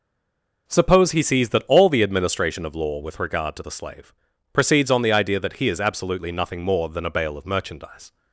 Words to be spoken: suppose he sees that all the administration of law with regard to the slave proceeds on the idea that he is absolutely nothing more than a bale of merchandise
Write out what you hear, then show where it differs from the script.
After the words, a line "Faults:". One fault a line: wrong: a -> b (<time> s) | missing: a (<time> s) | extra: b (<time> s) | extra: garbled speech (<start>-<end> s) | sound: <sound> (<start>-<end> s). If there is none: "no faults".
suppose he sees that all the administration of law with regard to the slave proceeds on the idea that he is absolutely nothing more than a bale of merchandise
Faults:
no faults